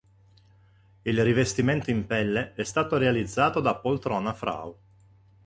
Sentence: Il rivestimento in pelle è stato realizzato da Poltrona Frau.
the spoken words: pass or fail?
pass